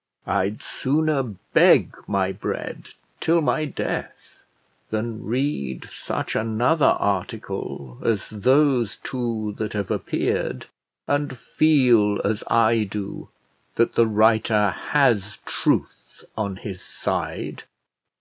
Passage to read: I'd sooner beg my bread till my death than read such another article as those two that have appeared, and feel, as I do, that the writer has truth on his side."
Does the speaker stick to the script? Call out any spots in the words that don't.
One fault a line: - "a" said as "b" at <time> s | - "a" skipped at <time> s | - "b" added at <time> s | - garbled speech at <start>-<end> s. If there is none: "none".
none